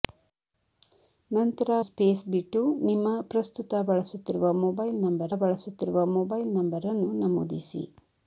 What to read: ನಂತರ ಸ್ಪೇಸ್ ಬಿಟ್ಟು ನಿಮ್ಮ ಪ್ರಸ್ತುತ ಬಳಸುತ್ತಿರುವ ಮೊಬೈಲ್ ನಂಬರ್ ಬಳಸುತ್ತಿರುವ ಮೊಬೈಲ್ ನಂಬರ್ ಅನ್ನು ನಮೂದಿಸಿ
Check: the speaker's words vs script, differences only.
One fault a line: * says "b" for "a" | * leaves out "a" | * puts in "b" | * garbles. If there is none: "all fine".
all fine